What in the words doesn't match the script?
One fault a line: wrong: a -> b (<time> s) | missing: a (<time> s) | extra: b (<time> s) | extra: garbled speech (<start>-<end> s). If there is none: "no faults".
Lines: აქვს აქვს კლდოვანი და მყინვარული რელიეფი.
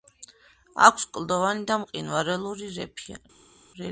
missing: აქვს (1.1 s)